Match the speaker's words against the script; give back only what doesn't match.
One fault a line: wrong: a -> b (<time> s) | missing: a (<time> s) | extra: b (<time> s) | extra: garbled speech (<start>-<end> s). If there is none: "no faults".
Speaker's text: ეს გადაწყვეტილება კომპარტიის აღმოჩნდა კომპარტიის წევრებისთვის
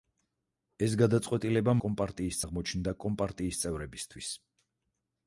no faults